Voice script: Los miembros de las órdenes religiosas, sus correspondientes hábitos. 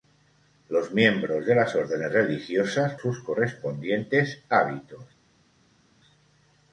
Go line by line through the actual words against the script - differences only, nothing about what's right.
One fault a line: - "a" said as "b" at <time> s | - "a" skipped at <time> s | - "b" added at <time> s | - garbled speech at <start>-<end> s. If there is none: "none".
none